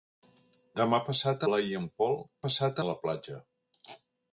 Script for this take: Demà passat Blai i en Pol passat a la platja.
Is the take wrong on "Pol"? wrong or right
right